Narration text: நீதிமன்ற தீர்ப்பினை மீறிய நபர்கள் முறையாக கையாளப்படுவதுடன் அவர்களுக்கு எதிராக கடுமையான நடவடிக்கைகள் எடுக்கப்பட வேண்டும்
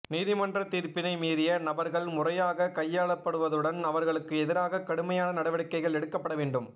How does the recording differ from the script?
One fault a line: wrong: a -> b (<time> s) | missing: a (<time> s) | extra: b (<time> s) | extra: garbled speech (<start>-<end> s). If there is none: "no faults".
no faults